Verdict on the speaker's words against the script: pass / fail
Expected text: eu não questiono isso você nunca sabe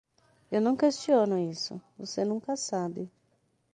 pass